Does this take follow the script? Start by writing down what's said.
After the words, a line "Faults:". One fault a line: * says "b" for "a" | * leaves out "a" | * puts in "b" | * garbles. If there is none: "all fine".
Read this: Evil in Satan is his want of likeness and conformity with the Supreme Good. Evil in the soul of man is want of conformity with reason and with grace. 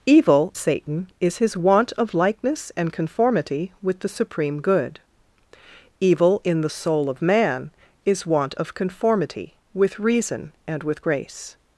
Evil Satan is his want of likeness and conformity with the Supreme Good. Evil in the soul of man is want of conformity with reason and with grace.
Faults:
* leaves out "in"